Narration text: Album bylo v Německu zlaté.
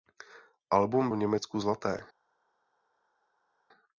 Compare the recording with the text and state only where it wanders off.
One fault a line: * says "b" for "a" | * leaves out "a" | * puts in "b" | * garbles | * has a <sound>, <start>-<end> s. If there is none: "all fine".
* leaves out "bylo"